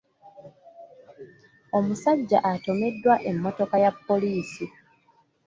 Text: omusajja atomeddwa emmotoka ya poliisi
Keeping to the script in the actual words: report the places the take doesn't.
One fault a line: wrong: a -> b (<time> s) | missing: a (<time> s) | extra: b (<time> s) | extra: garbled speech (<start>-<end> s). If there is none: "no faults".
no faults